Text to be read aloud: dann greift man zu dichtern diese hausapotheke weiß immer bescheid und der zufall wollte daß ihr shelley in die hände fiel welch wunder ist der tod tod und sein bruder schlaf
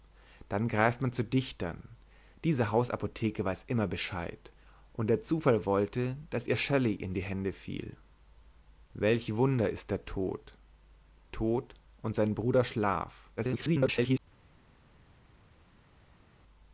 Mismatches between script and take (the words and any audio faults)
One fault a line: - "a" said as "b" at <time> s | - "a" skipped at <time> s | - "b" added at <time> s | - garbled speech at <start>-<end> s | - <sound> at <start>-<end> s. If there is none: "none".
- garbled speech at 13.4-14.2 s